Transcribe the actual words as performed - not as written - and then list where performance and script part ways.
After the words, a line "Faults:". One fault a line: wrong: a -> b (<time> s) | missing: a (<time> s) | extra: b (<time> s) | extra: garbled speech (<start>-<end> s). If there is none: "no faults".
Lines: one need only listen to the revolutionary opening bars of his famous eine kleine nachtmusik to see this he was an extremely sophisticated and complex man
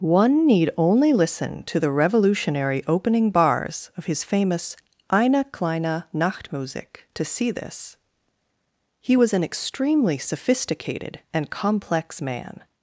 one need only listen to the revolutionary opening bars of his famous eine kleine nachtmusik to see this he was an extremely sophisticated and complex man
Faults:
no faults